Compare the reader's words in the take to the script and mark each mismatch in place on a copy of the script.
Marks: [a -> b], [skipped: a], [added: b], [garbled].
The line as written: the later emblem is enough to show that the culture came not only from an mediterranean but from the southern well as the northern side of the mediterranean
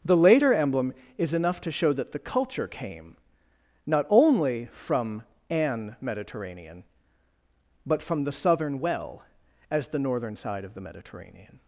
the later emblem is enough to show that the culture came not only from an mediterranean but from the southern well as the northern side of the mediterranean